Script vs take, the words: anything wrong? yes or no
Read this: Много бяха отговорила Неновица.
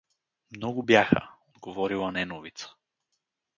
no